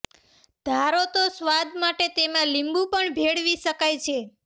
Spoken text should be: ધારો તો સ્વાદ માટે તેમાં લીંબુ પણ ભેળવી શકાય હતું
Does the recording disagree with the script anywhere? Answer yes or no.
yes